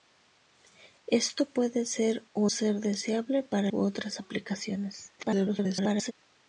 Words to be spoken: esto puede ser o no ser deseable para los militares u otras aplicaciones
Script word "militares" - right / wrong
wrong